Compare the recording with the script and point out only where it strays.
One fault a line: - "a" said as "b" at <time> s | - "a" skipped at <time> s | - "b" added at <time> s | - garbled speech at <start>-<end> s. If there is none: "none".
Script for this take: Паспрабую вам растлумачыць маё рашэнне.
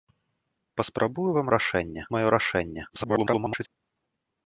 - "растлумачыць" said as "рашэнне" at 1.6 s
- garbled speech at 2.9-3.7 s